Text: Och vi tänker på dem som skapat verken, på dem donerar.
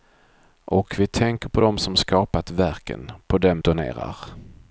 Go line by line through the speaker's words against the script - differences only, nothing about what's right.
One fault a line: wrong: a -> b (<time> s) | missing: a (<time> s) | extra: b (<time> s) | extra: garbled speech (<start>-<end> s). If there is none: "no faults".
no faults